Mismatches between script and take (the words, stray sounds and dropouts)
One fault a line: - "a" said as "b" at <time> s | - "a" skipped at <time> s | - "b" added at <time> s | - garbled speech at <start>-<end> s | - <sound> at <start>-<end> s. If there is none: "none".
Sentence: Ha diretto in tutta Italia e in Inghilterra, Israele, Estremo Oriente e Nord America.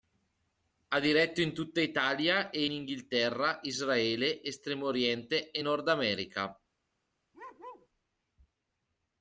- "in" skipped at 2.6 s
- bark at 7.3-7.9 s